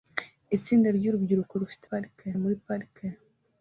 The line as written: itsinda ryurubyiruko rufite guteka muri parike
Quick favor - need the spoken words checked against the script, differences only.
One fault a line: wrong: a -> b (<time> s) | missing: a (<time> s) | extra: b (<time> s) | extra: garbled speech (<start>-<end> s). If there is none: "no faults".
wrong: guteka -> parike (1.9 s)